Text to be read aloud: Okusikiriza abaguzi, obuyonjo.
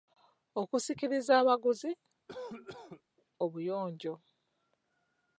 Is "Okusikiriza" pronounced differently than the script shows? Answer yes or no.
no